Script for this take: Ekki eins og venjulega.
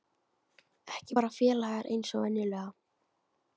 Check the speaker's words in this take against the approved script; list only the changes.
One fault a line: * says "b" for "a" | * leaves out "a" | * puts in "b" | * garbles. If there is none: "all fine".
* puts in "bara félagar"